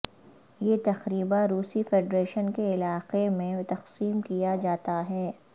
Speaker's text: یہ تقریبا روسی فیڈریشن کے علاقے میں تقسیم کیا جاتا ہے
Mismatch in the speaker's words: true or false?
false